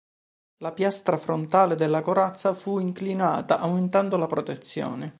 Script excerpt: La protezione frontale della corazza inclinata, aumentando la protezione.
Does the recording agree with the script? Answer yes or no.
no